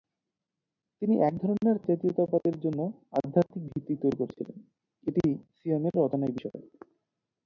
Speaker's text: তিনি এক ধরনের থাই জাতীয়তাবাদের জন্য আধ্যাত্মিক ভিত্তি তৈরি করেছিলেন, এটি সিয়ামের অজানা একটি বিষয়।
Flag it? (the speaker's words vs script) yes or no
yes